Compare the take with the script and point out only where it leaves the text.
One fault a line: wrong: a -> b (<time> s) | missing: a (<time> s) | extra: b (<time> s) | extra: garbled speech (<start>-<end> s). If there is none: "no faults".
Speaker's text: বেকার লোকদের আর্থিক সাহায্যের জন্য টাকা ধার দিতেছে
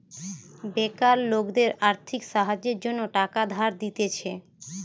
no faults